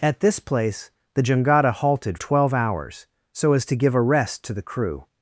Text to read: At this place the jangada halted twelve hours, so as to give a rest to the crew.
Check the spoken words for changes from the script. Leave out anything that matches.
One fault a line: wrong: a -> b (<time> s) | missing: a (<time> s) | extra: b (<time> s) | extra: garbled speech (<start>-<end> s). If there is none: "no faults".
no faults